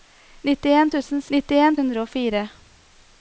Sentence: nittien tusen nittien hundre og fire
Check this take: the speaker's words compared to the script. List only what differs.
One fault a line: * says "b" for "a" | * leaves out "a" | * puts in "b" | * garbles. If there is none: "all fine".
all fine